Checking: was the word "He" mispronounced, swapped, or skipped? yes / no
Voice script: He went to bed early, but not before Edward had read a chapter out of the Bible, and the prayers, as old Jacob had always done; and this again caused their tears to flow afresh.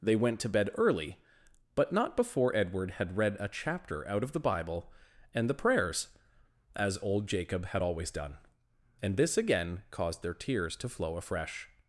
yes